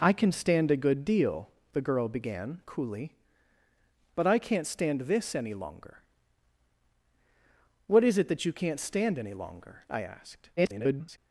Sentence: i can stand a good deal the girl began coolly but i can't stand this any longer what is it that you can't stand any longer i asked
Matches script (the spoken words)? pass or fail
fail